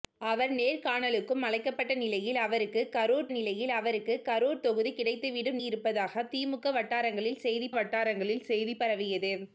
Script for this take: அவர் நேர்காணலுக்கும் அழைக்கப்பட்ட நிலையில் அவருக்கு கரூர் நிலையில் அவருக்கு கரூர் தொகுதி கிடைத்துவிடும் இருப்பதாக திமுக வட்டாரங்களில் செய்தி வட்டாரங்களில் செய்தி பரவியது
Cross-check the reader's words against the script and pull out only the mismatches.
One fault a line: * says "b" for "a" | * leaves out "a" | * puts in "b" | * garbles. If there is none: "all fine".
all fine